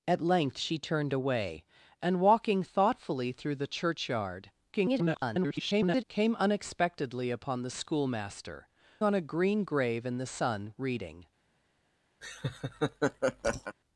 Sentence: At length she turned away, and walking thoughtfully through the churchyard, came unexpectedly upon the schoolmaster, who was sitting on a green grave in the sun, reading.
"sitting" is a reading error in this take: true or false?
true